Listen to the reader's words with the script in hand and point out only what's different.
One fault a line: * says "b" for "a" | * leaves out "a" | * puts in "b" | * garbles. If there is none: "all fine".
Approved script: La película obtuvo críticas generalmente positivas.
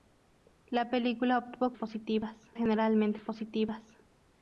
* says "positivas" for "críticas"